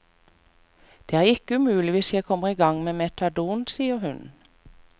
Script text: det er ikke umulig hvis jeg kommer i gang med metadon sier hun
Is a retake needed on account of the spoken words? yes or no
no